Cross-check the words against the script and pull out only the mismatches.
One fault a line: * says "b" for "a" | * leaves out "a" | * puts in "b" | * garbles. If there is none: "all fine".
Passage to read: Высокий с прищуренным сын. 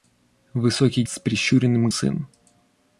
all fine